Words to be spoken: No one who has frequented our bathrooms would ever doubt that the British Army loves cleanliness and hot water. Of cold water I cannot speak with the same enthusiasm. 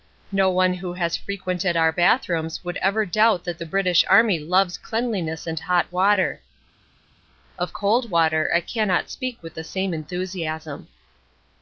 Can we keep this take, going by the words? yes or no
yes